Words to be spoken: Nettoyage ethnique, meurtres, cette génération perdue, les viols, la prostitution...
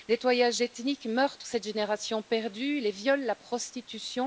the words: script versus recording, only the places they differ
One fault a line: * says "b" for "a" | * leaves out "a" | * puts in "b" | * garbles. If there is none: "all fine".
all fine